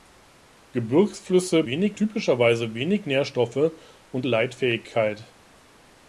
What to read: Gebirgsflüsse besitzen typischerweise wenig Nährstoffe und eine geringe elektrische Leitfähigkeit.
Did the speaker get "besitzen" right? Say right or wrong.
wrong